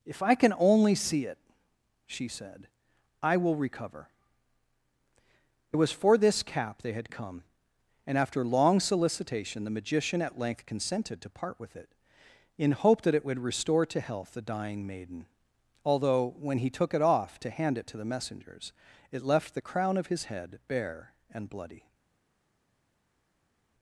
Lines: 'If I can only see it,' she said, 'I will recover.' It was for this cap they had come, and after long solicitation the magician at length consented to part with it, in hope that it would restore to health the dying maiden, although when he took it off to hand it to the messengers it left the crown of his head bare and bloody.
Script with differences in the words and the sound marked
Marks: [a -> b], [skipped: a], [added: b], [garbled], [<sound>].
'If I can only see it,' she said, 'I will recover.' It was for this cap they had come, and after long solicitation the magician at length consented to part with it, in hope that it would restore to health the dying maiden, although when he took it off to hand it to the messengers it left the crown of his head bare and bloody.